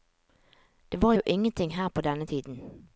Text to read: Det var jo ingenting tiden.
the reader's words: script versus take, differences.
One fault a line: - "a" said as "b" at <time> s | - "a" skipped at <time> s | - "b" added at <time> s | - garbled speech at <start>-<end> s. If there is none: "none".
- "her på denne" added at 1.8 s